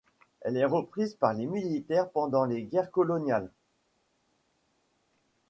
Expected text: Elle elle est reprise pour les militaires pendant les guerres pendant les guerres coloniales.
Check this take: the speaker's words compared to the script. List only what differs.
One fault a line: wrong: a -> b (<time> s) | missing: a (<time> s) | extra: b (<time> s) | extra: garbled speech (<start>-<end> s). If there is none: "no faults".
missing: elle (0.6 s)
wrong: pour -> par (1.1 s)
missing: pendant les guerres (2.9 s)